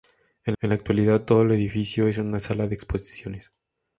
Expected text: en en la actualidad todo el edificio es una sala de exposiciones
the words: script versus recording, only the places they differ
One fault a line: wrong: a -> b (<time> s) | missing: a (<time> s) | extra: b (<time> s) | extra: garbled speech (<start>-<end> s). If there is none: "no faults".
no faults